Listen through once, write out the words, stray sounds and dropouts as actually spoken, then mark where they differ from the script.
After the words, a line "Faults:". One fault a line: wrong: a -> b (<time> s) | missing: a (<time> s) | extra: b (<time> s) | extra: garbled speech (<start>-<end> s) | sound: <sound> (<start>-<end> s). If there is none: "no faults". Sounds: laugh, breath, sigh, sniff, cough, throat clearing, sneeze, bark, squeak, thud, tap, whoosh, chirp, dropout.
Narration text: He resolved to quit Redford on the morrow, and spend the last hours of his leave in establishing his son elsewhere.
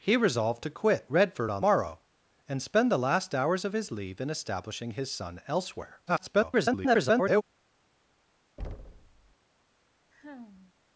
He resolved to quit Redford on morrow, and spend the last hours of his leave in establishing his son elsewhere. [garbled]
Faults:
missing: the (1.7 s)
extra: garbled speech (6.1-7.4 s)
sound: thud (8.6-9.3 s)
sound: sigh (10.1-10.7 s)